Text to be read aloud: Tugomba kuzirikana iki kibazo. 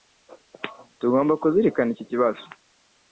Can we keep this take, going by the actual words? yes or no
yes